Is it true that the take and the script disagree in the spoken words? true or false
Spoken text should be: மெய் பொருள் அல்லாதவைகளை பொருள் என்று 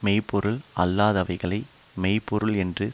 true